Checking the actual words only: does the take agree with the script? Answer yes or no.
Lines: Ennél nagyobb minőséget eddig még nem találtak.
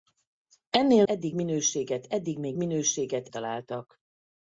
no